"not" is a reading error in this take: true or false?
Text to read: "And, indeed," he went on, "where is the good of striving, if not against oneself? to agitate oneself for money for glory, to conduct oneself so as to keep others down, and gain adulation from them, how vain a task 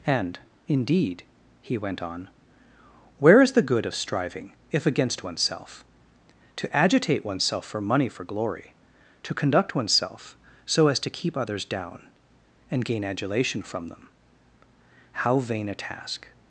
true